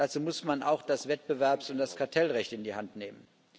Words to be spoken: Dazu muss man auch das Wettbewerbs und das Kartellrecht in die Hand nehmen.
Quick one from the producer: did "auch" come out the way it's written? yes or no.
yes